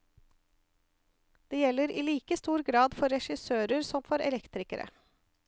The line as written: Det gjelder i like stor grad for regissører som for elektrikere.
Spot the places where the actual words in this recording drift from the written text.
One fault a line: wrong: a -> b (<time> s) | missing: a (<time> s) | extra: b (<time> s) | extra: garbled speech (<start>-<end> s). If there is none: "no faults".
no faults